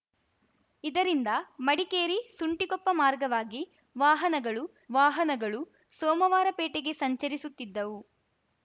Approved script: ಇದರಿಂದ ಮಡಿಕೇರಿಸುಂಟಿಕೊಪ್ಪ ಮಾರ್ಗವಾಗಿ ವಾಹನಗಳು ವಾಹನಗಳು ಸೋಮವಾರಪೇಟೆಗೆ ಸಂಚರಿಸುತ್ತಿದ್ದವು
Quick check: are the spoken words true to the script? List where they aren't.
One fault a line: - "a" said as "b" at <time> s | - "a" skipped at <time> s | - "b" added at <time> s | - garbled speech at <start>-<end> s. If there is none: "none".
none